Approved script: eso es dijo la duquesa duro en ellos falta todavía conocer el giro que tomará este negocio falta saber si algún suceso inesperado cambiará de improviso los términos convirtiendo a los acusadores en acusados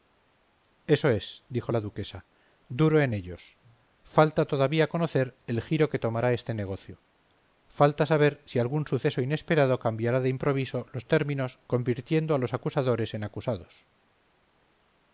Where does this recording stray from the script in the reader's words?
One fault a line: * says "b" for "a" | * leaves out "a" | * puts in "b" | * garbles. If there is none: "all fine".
all fine